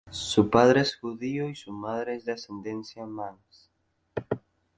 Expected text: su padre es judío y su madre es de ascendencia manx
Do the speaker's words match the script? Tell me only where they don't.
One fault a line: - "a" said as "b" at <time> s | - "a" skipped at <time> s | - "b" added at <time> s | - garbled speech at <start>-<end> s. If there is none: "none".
none